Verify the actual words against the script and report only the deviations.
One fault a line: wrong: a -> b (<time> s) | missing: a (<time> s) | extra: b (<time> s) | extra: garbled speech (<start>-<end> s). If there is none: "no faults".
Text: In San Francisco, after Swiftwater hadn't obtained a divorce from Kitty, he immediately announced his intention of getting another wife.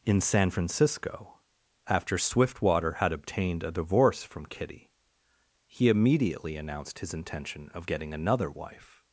wrong: hadn't -> had (2.9 s)